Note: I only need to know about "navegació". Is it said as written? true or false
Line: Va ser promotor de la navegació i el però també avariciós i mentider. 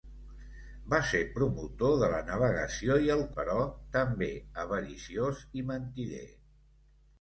true